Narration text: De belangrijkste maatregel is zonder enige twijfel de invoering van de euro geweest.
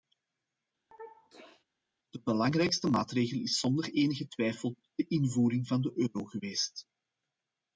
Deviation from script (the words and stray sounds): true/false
true